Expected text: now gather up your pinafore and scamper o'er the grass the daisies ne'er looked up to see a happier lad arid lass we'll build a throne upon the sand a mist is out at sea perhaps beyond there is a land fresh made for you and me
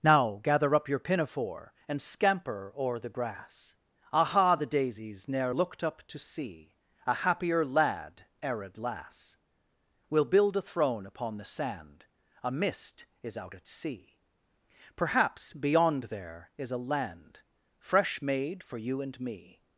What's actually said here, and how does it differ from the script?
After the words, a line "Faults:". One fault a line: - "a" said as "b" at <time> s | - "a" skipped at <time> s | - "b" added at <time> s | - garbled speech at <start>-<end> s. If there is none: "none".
now gather up your pinafore and scamper o'er the grass aha the daisies ne'er looked up to see a happier lad arid lass we'll build a throne upon the sand a mist is out at sea perhaps beyond there is a land fresh made for you and me
Faults:
- "aha" added at 4.1 s